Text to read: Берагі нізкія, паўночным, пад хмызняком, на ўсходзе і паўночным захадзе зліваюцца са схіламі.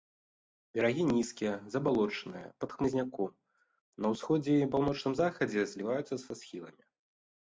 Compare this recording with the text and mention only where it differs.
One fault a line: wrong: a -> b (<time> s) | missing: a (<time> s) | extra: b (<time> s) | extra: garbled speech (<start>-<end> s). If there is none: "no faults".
wrong: паўночным -> забалочаныя (1.7 s)